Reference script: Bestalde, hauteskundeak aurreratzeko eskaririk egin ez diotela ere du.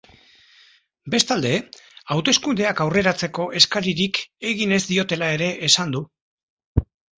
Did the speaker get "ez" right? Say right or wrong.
right